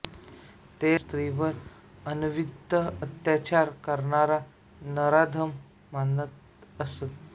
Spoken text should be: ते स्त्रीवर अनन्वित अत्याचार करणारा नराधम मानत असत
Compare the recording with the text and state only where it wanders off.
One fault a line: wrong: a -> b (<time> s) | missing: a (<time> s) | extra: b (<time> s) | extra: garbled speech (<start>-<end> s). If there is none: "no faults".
no faults